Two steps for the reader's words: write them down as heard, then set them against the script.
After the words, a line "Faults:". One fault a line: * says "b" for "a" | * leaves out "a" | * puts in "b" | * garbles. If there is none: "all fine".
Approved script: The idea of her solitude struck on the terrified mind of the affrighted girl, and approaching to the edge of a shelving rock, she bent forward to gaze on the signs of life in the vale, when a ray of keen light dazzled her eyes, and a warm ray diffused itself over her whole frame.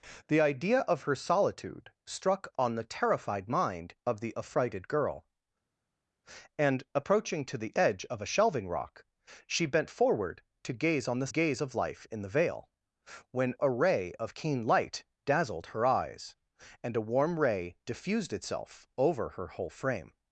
The idea of her solitude struck on the terrified mind of the affrighted girl, and approaching to the edge of a shelving rock, she bent forward to gaze on the gaze of life in the vale, when a ray of keen light dazzled her eyes, and a warm ray diffused itself over her whole frame.
Faults:
* says "gaze" for "signs"